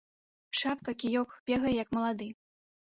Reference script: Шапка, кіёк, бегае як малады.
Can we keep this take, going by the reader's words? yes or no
yes